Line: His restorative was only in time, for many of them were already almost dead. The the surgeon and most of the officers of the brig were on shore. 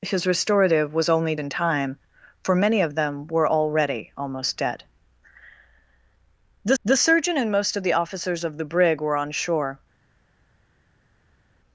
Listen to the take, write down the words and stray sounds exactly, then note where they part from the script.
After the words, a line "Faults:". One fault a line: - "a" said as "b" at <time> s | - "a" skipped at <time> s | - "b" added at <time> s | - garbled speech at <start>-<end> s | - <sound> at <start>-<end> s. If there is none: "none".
His restorative was only in time, for many of them were already almost dead. The the surgeon and most of the officers of the brig were on shore.
Faults:
none